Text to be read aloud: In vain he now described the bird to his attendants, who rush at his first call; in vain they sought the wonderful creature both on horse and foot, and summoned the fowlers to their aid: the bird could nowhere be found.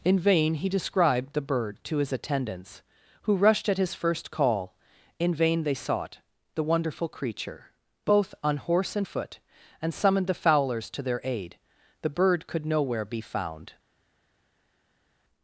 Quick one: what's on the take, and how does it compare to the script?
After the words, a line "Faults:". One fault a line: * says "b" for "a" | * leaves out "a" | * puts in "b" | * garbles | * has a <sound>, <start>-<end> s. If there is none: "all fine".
In vain he described the bird to his attendants, who rushed at his first call; in vain they sought the wonderful creature both on horse and foot, and summoned the fowlers to their aid: the bird could nowhere be found.
Faults:
* leaves out "now"
* says "rushed" for "rush"